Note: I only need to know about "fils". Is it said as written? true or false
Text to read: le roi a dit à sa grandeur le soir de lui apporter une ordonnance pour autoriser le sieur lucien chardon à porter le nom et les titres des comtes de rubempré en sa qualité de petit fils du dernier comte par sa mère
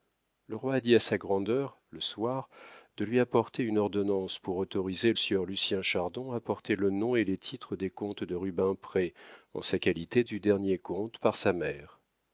false